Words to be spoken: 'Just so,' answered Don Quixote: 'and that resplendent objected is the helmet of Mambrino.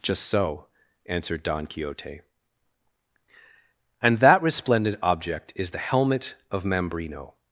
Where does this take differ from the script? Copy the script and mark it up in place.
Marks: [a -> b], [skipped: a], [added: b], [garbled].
'Just so,' answered Don Quixote: 'and that resplendent [objected -> object] is the helmet of Mambrino.